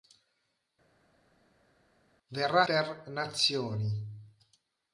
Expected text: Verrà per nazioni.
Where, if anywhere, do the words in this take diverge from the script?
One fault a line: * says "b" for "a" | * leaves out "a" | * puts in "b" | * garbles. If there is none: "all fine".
all fine